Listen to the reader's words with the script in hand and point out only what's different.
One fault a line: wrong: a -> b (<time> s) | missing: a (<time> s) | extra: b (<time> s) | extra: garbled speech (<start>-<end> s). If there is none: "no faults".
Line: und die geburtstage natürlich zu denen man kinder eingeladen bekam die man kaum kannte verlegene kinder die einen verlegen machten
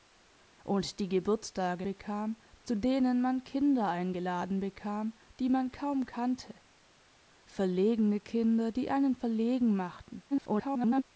wrong: natürlich -> bekam (1.8 s)
extra: garbled speech (10.3-11.0 s)